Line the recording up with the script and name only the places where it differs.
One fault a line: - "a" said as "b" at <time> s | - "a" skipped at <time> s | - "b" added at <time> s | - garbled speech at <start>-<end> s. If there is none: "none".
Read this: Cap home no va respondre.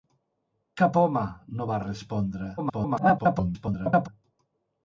- garbled speech at 2.6-4.1 s